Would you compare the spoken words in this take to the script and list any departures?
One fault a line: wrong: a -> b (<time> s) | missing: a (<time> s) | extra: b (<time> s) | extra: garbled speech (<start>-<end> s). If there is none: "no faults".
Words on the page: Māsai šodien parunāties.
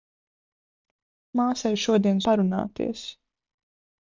no faults